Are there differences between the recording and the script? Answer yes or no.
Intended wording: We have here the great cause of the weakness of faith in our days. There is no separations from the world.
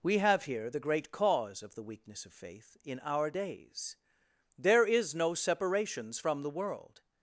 no